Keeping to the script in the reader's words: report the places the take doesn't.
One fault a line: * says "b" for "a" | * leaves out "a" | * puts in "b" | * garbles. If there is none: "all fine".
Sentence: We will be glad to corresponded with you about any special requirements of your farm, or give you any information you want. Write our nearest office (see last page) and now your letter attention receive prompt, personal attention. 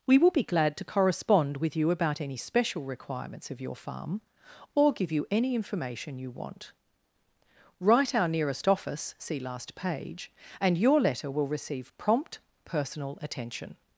* says "correspond" for "corresponded"
* leaves out "now"
* says "will" for "attention"